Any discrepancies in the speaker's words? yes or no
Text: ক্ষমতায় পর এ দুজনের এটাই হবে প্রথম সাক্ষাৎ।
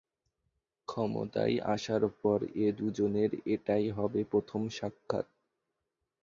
yes